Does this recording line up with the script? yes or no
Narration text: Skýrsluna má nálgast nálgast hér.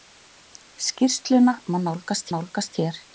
yes